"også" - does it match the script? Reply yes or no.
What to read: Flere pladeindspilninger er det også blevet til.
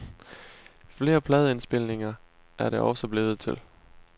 yes